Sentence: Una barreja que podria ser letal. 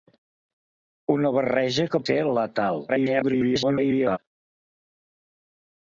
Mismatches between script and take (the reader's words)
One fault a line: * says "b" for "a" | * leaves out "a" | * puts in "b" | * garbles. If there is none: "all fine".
* leaves out "podria"
* garbles